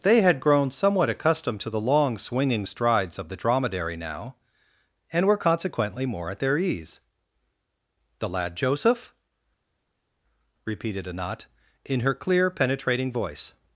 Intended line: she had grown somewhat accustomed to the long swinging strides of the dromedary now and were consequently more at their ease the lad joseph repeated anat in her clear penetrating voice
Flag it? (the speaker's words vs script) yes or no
yes